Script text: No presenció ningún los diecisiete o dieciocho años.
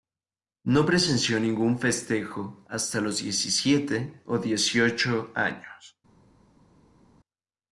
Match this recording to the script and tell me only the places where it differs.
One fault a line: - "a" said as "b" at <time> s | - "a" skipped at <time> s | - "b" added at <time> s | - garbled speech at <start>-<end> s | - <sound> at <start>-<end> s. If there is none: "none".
- "festejo hasta" added at 1.8 s